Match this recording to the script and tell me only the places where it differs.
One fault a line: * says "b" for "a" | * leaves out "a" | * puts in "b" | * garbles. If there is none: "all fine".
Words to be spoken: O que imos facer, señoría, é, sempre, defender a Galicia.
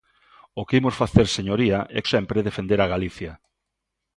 all fine